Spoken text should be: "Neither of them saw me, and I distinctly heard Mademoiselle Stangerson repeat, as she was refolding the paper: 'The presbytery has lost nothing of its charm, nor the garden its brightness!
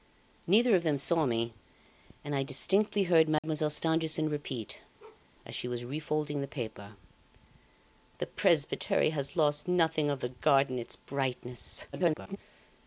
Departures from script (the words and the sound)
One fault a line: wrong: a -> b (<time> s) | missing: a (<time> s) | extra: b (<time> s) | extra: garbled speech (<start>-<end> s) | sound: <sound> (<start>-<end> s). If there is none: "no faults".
sound: dropout (3.4-3.4 s)
sound: bark (5.0-5.3 s)
missing: its charm nor (10.2 s)
extra: garbled speech (11.9-12.4 s)